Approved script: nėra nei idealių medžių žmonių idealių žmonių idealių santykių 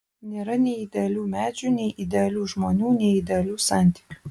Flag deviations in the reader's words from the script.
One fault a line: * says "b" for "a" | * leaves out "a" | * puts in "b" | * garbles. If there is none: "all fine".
* says "nei" for "žmonių"
* puts in "nei"